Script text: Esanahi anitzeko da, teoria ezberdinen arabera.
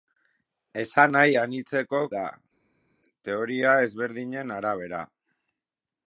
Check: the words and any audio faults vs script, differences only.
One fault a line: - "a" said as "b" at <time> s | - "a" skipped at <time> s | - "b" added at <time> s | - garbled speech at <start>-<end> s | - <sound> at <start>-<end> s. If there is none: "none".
none